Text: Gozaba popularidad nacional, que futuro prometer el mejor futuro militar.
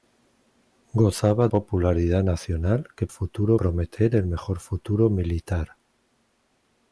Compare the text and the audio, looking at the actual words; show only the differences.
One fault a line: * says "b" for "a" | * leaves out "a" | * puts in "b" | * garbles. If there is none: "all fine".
all fine